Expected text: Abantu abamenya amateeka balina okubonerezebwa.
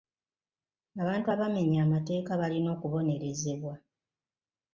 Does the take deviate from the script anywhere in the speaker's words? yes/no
no